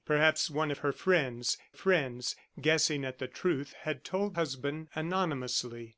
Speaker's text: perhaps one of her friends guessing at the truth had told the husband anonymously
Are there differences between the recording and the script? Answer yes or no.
yes